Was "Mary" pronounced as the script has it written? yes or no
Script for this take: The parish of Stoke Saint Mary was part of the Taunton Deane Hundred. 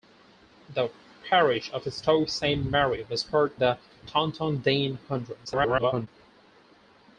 yes